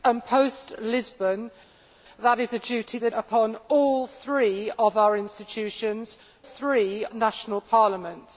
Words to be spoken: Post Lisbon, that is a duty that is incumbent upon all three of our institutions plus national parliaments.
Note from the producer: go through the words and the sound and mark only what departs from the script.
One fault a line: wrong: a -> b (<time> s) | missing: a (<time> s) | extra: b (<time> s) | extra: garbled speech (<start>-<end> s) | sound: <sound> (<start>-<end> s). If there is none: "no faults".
missing: is incumbent (3.1 s)
wrong: plus -> three (6.4 s)